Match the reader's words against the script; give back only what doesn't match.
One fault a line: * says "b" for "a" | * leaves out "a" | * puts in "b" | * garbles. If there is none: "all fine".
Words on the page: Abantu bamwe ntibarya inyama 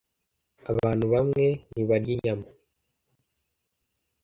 all fine